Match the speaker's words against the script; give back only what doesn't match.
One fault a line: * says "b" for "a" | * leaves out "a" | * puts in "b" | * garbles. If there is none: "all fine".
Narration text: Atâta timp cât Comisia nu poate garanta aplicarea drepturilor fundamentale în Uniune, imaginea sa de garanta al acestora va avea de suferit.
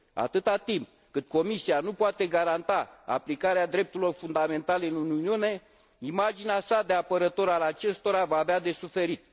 * says "apărător" for "garanta"